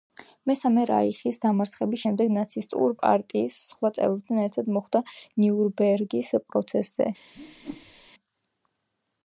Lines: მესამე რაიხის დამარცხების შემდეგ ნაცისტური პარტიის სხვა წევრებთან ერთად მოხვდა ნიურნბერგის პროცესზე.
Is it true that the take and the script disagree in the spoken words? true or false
false